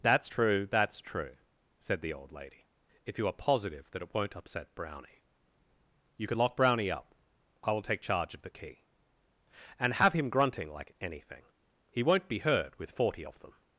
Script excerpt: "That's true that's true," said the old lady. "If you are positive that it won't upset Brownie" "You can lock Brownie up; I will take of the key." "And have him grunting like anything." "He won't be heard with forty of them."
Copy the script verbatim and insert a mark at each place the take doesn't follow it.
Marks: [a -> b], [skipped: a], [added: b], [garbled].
"That's true that's true," said the old lady. "If you are positive that it won't upset Brownie" "You can lock Brownie up; I will take [added: charge] of the key." "And have him grunting like anything." "He won't be heard with forty of them."